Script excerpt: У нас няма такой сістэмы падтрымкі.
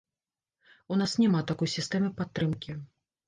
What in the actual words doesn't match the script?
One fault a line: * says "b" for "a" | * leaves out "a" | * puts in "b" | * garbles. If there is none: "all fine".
all fine